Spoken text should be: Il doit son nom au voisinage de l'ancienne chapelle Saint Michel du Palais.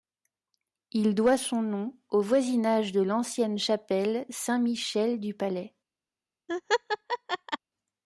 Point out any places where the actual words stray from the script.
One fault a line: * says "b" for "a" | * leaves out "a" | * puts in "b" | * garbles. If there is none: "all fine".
all fine